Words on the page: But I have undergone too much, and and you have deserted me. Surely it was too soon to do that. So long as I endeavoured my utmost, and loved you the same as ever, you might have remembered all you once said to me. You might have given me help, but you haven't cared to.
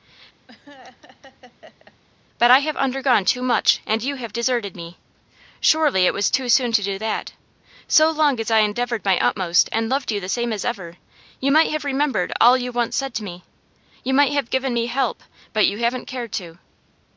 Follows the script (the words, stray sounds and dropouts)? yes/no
no